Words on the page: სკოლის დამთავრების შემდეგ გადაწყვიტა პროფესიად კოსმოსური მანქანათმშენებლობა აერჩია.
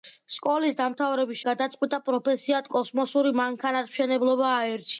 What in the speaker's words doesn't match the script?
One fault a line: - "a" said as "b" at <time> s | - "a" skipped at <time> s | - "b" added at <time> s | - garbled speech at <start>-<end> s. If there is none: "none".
- "შემდეგ" skipped at 1.4 s